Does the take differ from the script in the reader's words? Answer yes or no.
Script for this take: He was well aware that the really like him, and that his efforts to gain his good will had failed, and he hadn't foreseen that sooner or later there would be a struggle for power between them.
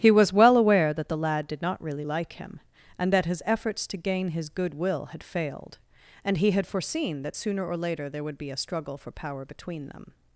yes